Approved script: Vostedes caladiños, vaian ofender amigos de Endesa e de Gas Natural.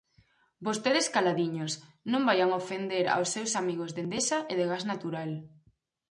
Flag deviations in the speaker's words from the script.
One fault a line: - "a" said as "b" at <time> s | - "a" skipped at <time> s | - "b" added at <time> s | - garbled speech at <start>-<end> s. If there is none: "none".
- "non" added at 2.1 s
- "aos seus" added at 3.1 s